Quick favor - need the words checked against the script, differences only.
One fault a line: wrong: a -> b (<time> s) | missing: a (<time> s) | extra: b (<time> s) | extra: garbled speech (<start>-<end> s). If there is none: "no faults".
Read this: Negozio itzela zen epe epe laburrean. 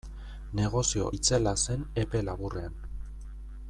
missing: epe (2.2 s)